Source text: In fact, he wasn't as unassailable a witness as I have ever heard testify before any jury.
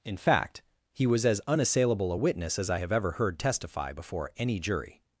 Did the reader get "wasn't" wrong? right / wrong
wrong